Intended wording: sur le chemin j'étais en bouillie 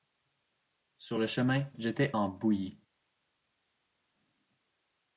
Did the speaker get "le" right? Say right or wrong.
right